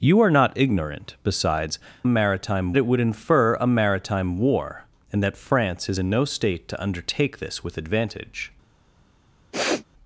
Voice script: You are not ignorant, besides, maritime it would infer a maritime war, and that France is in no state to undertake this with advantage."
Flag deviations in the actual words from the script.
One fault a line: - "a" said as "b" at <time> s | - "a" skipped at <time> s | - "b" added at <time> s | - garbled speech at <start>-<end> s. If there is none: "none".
none